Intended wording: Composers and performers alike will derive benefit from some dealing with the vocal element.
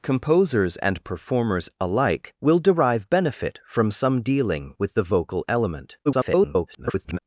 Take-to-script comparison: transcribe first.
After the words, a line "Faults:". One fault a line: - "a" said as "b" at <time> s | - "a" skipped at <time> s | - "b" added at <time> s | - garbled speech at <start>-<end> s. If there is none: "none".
Composers and performers alike will derive benefit from some dealing with the vocal element. [garbled]
Faults:
- garbled speech at 6.1-7.2 s